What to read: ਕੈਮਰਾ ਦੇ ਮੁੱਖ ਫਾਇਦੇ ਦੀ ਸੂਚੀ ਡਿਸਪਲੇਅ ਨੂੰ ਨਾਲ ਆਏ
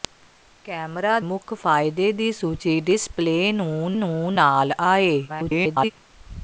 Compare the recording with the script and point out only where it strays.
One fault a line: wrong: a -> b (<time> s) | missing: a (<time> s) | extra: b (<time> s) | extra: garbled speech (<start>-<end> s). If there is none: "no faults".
missing: ਦੇ (1.2 s)
extra: ਨੂੰ (4.0 s)
extra: garbled speech (5.3-5.9 s)